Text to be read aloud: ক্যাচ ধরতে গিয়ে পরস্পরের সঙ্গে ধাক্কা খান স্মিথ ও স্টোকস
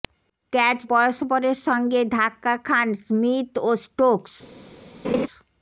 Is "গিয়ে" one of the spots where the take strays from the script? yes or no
yes